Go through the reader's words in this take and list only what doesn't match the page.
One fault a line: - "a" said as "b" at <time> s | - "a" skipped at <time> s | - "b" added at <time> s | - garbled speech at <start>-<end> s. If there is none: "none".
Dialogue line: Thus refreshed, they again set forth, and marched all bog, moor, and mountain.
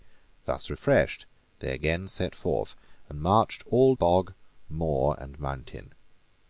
none